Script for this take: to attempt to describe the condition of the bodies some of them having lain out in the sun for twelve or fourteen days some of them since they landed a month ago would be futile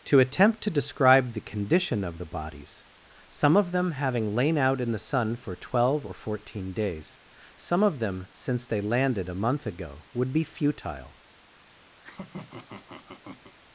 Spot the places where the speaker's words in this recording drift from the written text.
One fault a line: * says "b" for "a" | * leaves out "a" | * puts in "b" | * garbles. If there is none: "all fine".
all fine